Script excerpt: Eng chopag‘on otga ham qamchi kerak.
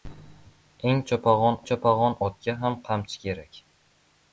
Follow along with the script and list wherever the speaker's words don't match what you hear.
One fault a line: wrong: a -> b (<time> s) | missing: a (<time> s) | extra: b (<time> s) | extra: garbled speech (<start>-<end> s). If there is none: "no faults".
extra: chopag‘on (1.7 s)